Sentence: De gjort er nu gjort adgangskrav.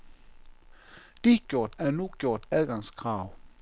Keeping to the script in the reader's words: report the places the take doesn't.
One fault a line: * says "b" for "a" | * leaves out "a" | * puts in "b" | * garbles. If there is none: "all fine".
all fine